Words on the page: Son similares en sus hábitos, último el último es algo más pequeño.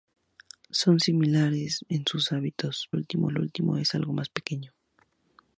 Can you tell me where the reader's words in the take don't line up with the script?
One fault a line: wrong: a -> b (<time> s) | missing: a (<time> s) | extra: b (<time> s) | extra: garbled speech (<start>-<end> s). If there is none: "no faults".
no faults